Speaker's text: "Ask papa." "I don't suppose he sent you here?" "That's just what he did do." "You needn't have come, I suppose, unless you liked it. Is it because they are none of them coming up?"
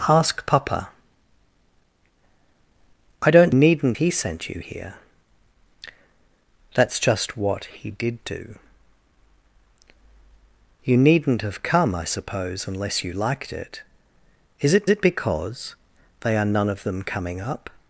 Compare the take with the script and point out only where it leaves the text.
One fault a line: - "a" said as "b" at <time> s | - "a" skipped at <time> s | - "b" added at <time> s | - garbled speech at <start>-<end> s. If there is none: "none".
- "suppose" said as "needn't" at 3.5 s
- "it" added at 14.9 s